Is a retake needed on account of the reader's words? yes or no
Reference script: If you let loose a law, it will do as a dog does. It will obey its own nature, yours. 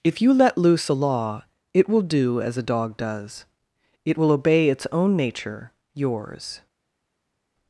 no